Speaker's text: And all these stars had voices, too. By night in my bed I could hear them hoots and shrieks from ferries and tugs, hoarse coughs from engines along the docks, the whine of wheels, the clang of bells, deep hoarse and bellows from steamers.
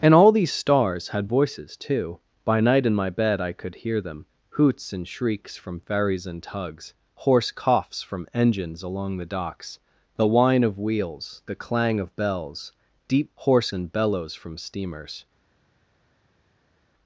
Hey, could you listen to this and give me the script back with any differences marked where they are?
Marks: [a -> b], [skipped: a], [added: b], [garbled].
And all these stars had voices, too. By night in my bed I could hear them hoots and shrieks from ferries and tugs, hoarse coughs from engines along the docks, the whine of wheels, the clang of bells, deep hoarse and bellows from steamers.